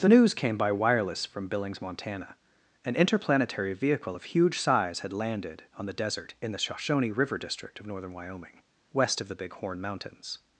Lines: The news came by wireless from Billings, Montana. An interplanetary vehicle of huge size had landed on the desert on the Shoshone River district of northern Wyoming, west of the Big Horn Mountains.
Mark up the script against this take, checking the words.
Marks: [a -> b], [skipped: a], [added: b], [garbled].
The news came by wireless from Billings, Montana. An interplanetary vehicle of huge size had landed on the desert [on -> in] the Shoshone River district of northern Wyoming, west of the Big Horn Mountains.